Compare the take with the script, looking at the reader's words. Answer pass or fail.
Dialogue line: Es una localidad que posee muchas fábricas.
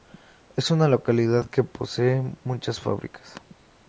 pass